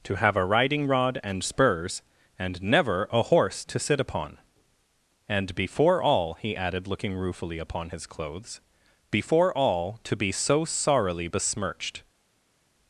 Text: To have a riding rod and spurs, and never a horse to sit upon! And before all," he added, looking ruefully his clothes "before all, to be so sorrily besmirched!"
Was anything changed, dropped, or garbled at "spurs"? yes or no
no